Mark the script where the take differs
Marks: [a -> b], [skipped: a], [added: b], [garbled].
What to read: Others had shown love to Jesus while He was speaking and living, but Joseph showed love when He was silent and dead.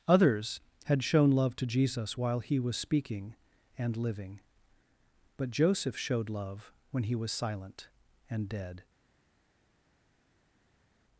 Others had shown love to Jesus while He was speaking and living, but Joseph showed love when He was silent and dead.